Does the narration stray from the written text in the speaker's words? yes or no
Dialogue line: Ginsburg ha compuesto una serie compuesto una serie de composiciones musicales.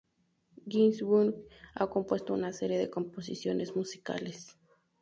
yes